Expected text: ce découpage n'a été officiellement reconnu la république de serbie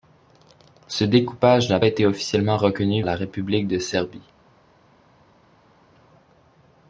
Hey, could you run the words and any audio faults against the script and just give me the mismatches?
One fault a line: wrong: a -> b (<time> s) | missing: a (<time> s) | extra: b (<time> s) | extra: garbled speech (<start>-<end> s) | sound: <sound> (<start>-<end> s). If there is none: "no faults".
no faults